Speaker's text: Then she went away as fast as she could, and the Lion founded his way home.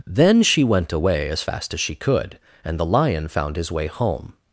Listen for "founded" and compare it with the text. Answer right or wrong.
wrong